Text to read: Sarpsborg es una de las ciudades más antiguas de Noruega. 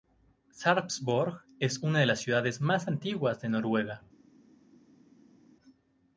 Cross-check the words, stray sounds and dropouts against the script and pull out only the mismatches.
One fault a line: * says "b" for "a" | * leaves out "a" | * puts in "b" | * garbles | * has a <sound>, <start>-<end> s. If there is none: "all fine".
all fine